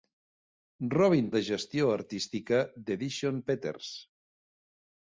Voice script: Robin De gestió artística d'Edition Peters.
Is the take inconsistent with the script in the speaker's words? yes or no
no